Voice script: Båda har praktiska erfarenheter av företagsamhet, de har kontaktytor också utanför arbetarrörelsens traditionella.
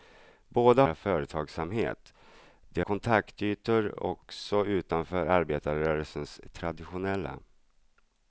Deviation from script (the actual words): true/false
true